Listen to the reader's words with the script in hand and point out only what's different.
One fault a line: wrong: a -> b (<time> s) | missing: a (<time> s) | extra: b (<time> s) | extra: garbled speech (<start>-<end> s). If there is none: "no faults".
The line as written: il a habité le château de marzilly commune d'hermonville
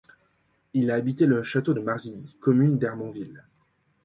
no faults